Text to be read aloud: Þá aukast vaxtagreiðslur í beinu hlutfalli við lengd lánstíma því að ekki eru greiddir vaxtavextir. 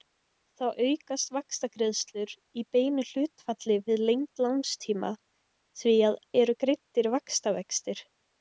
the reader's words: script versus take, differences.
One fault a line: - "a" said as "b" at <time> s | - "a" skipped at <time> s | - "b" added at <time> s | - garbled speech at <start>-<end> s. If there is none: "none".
- "ekki" skipped at 6.2 s